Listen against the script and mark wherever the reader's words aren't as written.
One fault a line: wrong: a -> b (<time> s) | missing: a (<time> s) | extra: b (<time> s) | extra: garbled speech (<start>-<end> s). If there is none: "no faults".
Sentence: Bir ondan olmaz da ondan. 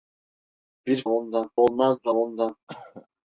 no faults